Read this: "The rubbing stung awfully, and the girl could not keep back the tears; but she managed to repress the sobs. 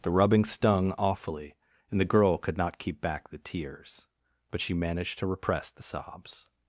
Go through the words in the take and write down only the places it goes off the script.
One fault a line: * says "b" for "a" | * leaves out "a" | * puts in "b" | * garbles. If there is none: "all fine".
all fine